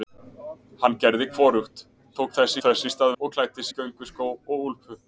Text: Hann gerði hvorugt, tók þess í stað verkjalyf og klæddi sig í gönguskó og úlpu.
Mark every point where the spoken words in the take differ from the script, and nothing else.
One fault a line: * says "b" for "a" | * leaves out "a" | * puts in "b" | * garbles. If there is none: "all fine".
* puts in "þess"
* leaves out "verkjalyf"
* leaves out "sig"